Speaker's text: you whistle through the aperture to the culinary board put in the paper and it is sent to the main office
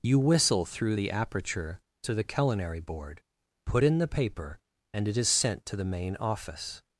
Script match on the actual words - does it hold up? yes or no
yes